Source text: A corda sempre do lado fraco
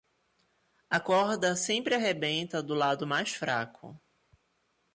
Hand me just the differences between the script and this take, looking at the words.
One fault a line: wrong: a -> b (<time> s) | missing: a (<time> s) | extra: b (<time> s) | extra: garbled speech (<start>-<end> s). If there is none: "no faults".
extra: arrebenta (1.9 s)
extra: mais (3.1 s)